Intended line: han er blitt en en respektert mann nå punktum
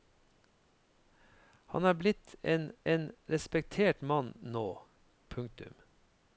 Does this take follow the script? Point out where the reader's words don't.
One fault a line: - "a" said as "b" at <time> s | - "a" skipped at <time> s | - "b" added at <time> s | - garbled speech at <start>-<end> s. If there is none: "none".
none